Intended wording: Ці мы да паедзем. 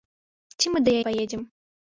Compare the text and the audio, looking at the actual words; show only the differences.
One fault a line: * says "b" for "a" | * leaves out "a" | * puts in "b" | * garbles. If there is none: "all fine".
all fine